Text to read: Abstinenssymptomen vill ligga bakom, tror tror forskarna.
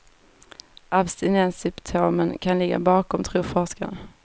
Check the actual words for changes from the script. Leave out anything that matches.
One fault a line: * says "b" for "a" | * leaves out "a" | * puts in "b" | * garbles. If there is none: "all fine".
* says "kan" for "vill"
* leaves out "tror"